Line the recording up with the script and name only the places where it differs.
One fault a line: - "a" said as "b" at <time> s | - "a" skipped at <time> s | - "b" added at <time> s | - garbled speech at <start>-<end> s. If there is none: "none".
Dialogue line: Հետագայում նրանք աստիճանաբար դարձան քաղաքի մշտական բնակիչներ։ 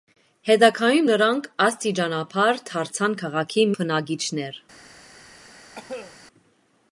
- "մշտական" skipped at 3.7 s